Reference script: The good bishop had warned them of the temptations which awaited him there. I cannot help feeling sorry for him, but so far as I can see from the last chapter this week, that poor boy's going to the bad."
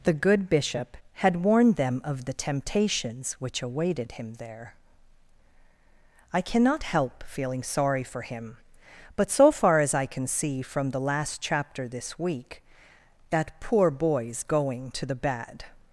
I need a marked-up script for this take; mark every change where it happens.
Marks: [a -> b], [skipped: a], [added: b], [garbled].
The good bishop had warned them of the temptations which awaited him there. I cannot help feeling sorry for him, but so far as I can see from the last chapter this week, that poor boy's going to the bad."